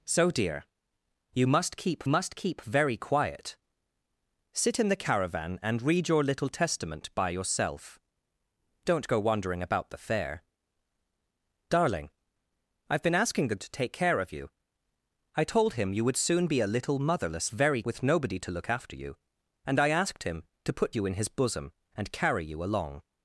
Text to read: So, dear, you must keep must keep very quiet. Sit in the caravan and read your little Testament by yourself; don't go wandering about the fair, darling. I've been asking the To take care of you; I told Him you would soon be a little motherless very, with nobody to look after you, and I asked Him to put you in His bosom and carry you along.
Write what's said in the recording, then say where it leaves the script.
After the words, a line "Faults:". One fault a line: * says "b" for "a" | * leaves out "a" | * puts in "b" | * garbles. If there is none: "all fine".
So, dear, you must keep must keep very quiet. Sit in the caravan and read your little Testament by yourself; don't go wandering about the fair, darling. I've been asking the To take care of you; I told Him you would soon be a little motherless very, with nobody to look after you, and I asked Him to put you in His bosom and carry you along.
Faults:
all fine